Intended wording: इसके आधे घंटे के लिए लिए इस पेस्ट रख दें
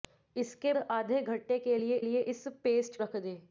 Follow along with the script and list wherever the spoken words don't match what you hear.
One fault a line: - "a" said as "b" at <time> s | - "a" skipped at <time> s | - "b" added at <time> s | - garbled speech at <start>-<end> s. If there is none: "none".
none